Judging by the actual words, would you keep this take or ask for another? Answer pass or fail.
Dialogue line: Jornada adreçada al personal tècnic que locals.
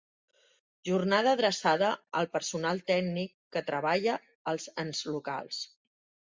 fail